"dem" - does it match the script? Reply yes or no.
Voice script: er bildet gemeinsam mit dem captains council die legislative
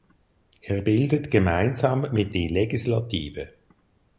no